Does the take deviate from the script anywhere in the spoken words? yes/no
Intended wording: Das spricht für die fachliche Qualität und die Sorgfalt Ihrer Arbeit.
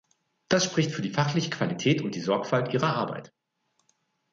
no